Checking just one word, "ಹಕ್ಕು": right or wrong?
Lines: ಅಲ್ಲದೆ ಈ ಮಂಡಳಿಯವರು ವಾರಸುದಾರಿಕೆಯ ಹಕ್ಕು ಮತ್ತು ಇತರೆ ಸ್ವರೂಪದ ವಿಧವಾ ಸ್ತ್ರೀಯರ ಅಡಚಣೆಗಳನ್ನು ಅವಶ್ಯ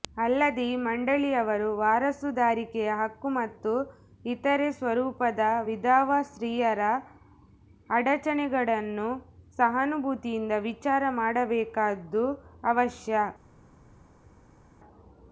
right